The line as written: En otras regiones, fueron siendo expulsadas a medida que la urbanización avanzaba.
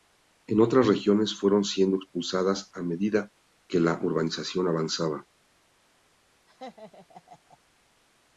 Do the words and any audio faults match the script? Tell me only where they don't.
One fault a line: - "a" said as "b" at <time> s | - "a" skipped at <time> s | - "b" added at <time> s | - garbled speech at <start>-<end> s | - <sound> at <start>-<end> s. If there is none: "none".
- laugh at 6.5-7.6 s